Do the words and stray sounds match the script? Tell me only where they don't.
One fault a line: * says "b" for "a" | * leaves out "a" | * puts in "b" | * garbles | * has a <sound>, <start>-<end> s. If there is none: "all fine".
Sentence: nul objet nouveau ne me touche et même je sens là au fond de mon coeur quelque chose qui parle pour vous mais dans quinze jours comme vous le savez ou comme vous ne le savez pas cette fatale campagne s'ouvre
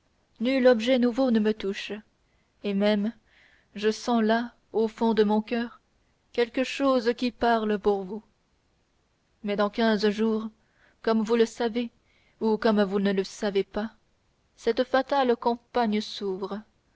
all fine